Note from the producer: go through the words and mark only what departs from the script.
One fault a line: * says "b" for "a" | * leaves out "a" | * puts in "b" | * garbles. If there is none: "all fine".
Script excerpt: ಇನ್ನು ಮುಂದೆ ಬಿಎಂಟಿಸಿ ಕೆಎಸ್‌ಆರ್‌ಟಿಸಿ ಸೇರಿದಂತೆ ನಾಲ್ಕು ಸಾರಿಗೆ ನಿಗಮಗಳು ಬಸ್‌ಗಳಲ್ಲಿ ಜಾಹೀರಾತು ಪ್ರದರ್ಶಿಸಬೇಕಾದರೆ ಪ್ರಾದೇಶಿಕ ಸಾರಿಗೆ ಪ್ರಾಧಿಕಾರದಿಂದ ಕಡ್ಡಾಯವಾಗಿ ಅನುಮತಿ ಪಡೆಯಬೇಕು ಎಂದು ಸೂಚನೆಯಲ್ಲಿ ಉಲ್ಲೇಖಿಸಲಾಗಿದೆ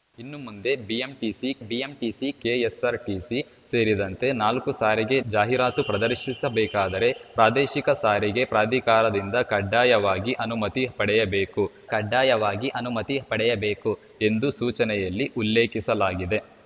* puts in "ಬಿಎಂಟಿಸಿ"
* leaves out "ನಿಗಮಗಳು ಬಸ್‌ಗಳಲ್ಲಿ"
* puts in "ಕಡ್ಡಾಯವಾಗಿ ಅನುಮತಿ ಪಡೆಯಬೇಕು"